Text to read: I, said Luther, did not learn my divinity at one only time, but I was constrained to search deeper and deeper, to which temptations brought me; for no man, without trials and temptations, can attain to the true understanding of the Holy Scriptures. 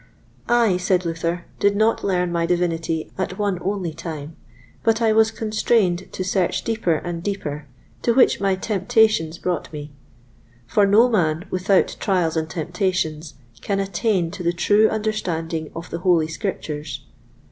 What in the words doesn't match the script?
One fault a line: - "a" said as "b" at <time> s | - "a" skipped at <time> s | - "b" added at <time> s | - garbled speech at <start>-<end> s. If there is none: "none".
- "my" added at 8.4 s